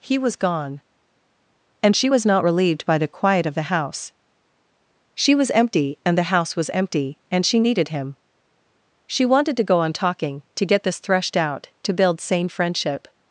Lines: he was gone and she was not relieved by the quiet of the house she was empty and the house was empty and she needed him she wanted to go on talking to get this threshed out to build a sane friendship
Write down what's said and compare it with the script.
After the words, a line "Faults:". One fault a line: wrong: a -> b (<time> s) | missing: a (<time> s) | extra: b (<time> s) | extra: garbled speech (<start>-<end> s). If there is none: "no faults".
he was gone and she was not relieved by the quiet of the house she was empty and the house was empty and she needed him she wanted to go on talking to get this threshed out to build sane friendship
Faults:
missing: a (12.2 s)